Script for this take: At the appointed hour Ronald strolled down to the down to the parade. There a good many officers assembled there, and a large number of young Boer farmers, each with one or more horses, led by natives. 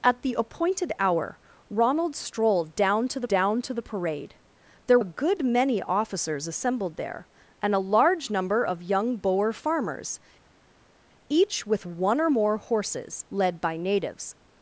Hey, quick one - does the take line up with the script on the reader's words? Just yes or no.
yes